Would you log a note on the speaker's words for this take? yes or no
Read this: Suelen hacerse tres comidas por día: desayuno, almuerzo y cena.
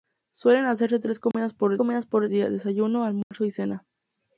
yes